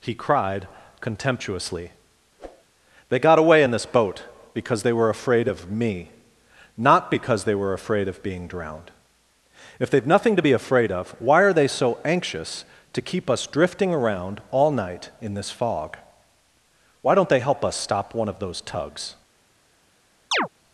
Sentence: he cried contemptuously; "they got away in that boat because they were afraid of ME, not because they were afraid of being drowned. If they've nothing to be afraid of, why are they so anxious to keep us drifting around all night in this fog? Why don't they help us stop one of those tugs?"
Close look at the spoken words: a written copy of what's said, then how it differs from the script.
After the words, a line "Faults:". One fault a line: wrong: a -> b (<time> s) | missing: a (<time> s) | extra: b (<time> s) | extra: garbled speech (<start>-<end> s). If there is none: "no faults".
he cried contemptuously; "they got away in this boat because they were afraid of ME, not because they were afraid of being drowned. If they've nothing to be afraid of, why are they so anxious to keep us drifting around all night in this fog? Why don't they help us stop one of those tugs?"
Faults:
wrong: that -> this (3.7 s)